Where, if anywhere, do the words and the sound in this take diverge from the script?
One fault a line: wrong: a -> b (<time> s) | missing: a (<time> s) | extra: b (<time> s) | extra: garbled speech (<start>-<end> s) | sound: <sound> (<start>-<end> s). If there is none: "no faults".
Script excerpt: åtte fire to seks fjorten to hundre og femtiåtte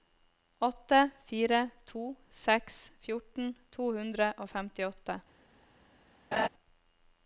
sound: laugh (6.3-6.5 s)